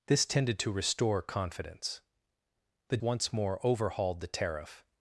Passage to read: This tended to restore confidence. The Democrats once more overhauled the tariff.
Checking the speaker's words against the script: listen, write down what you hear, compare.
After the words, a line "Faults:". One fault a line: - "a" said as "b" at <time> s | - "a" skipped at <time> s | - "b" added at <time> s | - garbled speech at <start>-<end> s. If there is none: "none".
This tended to restore confidence. The Once more overhauled the tariff.
Faults:
- "Democrats" skipped at 3.0 s